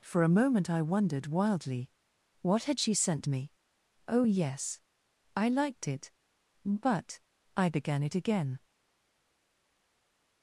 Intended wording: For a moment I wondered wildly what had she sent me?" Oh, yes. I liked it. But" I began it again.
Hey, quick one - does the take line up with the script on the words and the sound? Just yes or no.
yes